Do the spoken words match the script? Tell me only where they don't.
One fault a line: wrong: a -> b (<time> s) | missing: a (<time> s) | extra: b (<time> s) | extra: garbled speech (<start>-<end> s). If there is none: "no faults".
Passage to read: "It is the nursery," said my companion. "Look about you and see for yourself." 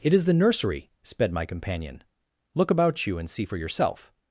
wrong: said -> sped (1.0 s)